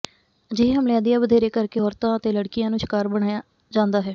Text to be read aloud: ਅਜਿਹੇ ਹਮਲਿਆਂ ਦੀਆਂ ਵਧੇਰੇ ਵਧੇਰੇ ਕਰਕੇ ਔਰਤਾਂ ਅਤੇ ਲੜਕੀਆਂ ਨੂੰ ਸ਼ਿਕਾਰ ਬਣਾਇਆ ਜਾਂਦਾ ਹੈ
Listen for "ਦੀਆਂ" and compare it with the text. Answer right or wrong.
right